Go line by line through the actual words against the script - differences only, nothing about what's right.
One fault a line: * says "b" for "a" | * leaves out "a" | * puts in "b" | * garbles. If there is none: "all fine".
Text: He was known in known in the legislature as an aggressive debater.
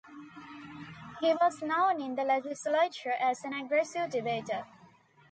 * leaves out "known in"